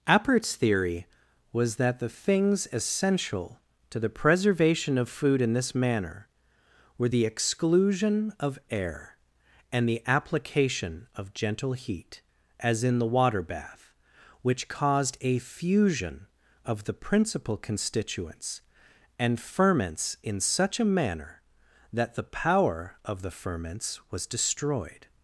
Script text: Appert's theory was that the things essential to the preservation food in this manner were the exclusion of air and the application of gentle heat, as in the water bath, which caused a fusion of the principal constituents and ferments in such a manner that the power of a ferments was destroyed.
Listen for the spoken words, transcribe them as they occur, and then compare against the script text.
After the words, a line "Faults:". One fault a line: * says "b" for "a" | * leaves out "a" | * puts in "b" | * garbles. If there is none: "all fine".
Appert's theory was that the things essential to the preservation of food in this manner were the exclusion of air and the application of gentle heat, as in the water bath, which caused a fusion of the principal constituents and ferments in such a manner that the power of the ferments was destroyed.
Faults:
* puts in "of"
* says "the" for "a"